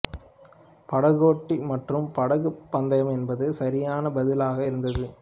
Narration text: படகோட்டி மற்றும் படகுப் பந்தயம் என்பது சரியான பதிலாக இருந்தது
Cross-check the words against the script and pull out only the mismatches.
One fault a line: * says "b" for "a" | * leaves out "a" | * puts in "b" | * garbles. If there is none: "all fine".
all fine